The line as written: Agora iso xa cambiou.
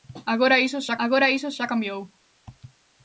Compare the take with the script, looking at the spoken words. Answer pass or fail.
fail